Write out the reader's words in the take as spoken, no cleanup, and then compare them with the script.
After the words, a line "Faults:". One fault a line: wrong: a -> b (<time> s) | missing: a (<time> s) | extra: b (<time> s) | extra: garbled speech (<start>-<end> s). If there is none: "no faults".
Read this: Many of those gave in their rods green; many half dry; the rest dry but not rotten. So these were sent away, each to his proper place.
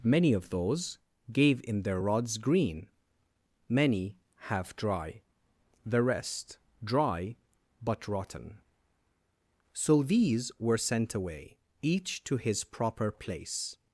Many of those gave in their rods green; many half dry; the rest dry but rotten. So these were sent away, each to his proper place.
Faults:
missing: not (8.1 s)